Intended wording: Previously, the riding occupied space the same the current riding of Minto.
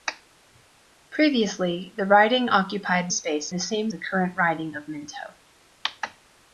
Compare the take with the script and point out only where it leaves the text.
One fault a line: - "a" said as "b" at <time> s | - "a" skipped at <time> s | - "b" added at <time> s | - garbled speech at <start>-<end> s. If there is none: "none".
none